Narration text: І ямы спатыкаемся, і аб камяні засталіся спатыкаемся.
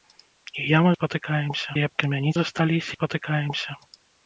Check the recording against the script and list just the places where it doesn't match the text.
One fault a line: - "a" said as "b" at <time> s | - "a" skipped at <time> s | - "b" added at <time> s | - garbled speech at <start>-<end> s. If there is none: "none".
none